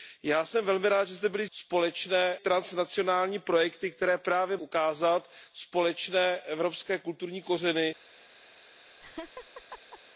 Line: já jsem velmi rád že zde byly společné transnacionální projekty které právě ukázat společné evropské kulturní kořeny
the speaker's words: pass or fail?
pass